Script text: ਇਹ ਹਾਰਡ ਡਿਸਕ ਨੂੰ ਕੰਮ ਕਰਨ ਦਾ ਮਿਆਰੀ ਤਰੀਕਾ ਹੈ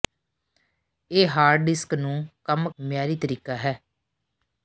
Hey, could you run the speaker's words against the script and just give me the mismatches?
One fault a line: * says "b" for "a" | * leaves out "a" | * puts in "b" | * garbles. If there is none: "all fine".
* leaves out "ਕਰਨ ਦਾ"